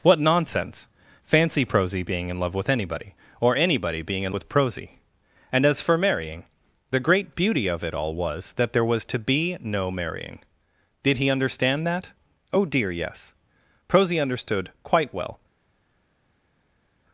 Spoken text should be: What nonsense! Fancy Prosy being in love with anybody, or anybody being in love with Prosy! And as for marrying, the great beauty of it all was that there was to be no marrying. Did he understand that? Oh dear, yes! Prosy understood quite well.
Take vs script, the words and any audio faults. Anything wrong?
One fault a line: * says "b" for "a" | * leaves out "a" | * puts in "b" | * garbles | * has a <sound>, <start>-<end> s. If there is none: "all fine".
* leaves out "love"